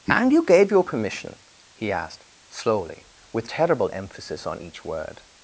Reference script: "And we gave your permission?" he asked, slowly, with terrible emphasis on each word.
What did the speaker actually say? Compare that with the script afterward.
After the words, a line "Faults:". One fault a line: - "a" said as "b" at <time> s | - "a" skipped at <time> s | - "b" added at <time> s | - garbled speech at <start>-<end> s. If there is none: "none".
"And you gave your permission?" he asked, slowly, with terrible emphasis on each word.
Faults:
- "we" said as "you" at 0.3 s